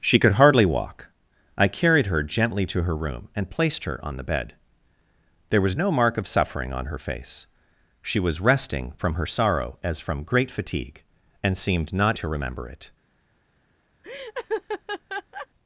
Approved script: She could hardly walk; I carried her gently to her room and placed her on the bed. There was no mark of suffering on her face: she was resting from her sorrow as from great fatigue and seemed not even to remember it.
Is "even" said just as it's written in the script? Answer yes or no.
no